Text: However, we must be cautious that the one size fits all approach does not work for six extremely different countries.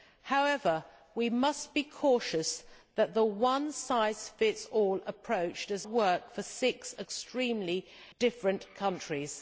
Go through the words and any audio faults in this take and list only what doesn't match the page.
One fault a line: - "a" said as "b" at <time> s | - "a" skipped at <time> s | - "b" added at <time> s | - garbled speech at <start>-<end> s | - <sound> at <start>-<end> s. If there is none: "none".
- "not" skipped at 5.8 s